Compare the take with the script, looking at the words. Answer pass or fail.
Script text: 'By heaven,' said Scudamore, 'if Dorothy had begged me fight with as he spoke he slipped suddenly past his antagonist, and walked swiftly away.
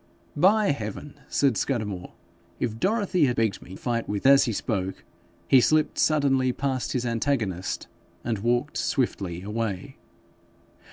pass